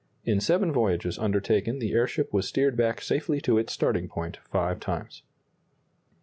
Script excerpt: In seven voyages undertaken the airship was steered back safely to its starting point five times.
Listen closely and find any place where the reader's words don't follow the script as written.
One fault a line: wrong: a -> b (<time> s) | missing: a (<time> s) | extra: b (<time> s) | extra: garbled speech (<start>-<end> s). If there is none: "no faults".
no faults